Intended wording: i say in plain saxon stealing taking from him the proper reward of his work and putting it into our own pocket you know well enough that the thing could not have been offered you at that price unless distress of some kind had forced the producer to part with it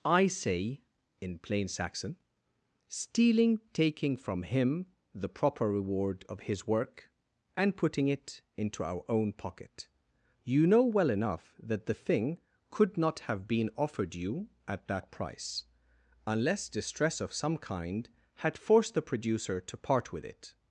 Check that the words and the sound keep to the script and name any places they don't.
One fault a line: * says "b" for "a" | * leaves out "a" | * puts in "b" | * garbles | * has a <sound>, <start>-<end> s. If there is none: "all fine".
all fine